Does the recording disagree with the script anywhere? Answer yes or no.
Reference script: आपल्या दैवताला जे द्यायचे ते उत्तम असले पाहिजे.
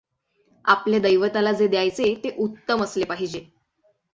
no